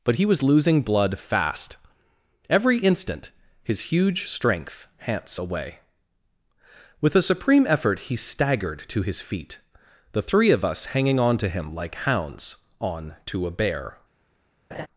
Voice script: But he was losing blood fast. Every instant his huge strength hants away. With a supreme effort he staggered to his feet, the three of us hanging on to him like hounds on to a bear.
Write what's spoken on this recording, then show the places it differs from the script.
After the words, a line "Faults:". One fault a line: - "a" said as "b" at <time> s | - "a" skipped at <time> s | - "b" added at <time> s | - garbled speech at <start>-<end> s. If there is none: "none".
But he was losing blood fast. Every instant his huge strength hants away. With a supreme effort he staggered to his feet, the three of us hanging on to him like hounds on to a bear.
Faults:
none